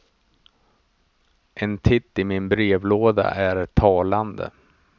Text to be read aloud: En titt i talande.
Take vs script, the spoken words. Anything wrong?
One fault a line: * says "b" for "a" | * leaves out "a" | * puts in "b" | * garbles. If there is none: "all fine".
* puts in "min brevlåda är"